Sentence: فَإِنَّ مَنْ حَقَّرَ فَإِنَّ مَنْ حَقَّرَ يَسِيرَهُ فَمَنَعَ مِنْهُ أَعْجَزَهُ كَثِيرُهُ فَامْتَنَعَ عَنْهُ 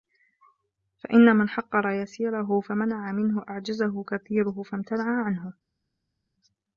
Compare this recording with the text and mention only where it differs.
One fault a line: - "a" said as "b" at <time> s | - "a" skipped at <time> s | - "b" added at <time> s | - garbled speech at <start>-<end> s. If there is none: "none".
- "فَإِنَّ مَنْ حَقَّرَ" skipped at 1.9 s